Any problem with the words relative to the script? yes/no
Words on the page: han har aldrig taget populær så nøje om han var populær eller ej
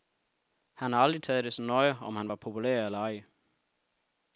yes